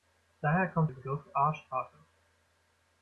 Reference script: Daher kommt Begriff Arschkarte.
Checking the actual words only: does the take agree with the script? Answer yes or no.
yes